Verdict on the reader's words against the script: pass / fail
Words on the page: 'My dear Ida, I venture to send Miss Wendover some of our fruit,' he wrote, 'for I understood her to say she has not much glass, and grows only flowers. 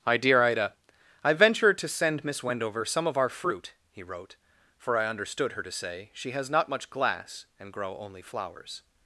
fail